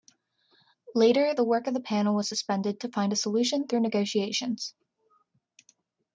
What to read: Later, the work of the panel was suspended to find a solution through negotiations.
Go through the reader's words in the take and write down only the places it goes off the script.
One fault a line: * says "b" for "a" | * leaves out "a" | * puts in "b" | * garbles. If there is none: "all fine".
all fine